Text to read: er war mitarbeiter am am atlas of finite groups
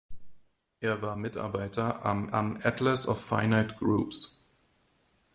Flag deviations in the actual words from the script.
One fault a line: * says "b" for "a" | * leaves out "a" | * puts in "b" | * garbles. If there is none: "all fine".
all fine